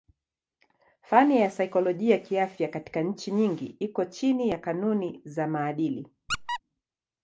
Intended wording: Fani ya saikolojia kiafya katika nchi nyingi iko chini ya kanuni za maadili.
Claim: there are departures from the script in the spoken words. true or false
false